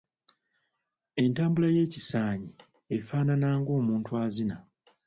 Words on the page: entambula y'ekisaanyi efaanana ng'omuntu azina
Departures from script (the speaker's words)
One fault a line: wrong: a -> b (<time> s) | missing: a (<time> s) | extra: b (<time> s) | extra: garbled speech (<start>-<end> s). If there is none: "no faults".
no faults